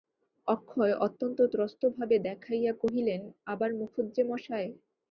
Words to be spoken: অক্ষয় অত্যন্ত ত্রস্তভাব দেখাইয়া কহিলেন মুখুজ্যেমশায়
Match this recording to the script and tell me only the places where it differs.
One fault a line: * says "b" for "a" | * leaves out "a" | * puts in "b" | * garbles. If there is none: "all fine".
* puts in "আবার"